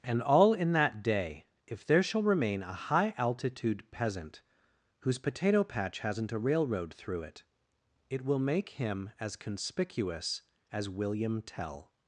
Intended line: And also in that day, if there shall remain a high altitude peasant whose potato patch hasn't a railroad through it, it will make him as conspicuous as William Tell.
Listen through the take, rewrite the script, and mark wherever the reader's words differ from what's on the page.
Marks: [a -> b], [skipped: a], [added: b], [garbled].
And [also -> all] in that day, if there shall remain a high altitude peasant whose potato patch hasn't a railroad through it, it will make him as conspicuous as William Tell.